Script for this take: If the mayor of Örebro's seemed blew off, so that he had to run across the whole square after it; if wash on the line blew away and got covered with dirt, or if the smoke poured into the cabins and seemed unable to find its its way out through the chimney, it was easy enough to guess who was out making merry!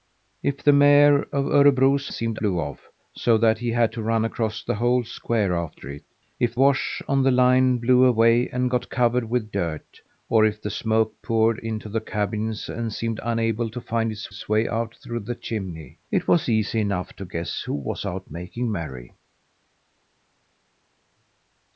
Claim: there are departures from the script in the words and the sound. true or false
false